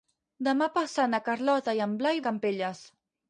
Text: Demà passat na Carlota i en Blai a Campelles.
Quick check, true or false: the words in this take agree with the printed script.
true